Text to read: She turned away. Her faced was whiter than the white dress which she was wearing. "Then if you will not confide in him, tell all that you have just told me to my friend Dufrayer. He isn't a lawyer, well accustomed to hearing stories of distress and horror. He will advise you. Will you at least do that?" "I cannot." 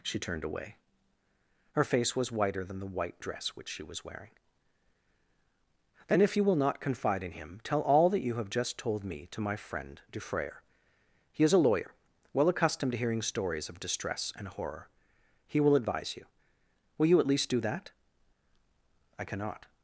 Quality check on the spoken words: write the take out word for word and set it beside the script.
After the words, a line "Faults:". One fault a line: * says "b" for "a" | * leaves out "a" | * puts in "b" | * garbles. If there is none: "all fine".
She turned away. Her face was whiter than the white dress which she was wearing. "Then if you will not confide in him, tell all that you have just told me to my friend Dufrayer. He is a lawyer, well accustomed to hearing stories of distress and horror. He will advise you. Will you at least do that?" "I cannot."
Faults:
* says "face" for "faced"
* says "is" for "isn't"